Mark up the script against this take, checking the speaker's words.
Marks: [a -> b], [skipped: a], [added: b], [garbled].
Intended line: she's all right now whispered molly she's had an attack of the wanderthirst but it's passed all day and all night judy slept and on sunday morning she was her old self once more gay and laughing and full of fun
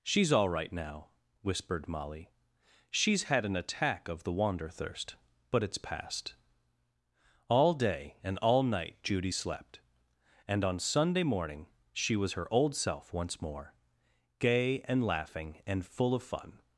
she's all right now whispered molly she's had an attack of the wanderthirst but it's passed all day and all night judy slept and on sunday morning she was her old self once more gay and laughing and full of fun